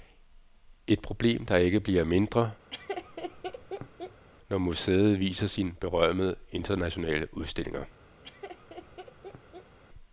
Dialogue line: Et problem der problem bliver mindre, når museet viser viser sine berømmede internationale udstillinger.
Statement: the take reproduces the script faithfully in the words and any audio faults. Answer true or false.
false